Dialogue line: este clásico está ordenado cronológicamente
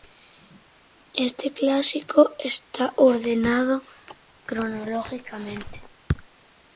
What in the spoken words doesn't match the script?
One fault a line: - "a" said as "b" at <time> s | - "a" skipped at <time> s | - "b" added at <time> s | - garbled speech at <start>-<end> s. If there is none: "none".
none